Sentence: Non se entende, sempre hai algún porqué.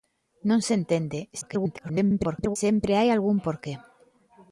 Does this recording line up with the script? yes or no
no